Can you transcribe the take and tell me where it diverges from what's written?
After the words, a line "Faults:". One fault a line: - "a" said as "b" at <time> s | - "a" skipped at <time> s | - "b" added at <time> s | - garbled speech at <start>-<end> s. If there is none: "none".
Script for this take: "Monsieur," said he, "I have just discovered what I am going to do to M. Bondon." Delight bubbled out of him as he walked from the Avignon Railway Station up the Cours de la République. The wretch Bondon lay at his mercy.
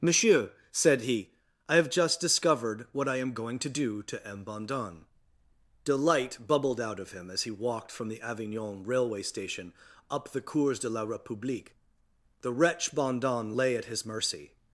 "Monsieur," said he, "I have just discovered what I am going to do to M. Bondon." Delight bubbled out of him as he walked from the Avignon Railway Station up the Cours de la République. The wretch Bondon lay at his mercy.
Faults:
none